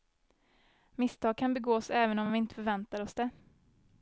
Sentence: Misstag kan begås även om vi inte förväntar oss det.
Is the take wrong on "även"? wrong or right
right